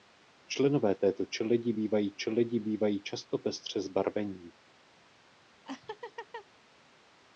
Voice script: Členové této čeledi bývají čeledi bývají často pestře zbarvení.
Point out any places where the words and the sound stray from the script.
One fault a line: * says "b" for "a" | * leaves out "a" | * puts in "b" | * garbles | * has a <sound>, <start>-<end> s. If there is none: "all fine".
* has a laugh, 5.7-6.5 s